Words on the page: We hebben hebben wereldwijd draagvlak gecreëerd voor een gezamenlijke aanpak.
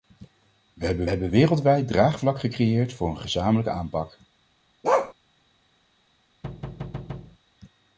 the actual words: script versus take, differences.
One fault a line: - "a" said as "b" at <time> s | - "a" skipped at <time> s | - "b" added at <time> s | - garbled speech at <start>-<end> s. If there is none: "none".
none